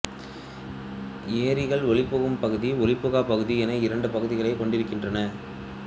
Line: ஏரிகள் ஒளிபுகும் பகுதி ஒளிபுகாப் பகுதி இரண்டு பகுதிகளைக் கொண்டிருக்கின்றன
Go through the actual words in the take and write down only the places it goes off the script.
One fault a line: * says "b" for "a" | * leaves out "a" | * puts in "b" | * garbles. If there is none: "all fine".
* puts in "என"